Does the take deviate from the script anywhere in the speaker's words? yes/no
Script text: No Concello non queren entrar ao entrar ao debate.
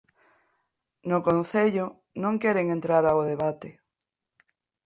yes